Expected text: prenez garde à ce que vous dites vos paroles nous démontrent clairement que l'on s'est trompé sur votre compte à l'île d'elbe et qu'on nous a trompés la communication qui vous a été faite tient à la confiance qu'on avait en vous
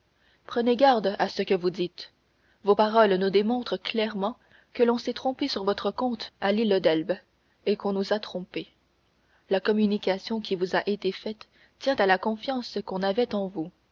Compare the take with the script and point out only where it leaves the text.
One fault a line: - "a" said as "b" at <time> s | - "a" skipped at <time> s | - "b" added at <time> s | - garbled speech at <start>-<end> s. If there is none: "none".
none